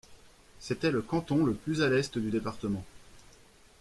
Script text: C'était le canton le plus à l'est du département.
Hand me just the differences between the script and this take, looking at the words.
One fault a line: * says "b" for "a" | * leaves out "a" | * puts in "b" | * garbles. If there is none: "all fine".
all fine